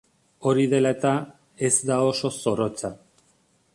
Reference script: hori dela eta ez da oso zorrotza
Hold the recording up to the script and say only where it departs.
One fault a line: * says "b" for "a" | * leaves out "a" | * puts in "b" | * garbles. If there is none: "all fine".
all fine